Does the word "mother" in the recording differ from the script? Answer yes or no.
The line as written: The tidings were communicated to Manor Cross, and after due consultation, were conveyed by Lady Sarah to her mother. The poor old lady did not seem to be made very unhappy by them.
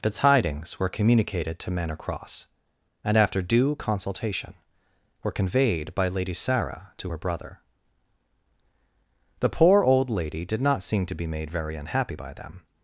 yes